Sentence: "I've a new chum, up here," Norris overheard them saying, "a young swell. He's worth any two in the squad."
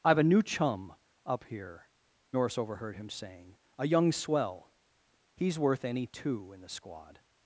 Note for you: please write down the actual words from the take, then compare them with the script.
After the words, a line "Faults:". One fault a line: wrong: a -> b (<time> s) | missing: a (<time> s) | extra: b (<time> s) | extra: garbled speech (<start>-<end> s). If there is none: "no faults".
"I've a new chum, up here," Norris overheard him saying, "a young swell. He's worth any two in the squad."
Faults:
wrong: them -> him (3.0 s)